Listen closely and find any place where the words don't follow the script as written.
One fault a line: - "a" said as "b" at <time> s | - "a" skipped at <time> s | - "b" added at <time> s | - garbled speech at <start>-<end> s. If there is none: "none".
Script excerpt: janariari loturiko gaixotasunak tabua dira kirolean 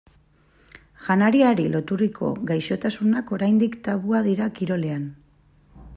- "oraindik" added at 3.4 s